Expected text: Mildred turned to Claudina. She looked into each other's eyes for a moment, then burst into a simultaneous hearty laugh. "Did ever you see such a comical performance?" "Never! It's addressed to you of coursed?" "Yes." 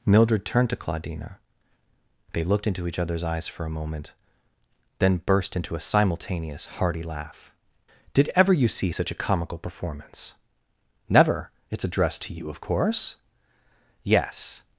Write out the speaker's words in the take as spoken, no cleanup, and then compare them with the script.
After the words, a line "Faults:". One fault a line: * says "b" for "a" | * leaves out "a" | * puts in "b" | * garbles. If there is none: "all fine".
Mildred turned to Claudina. They looked into each other's eyes for a moment, then burst into a simultaneous hearty laugh. "Did ever you see such a comical performance?" "Never! It's addressed to you of course?" "Yes."
Faults:
* says "They" for "She"
* says "course" for "coursed"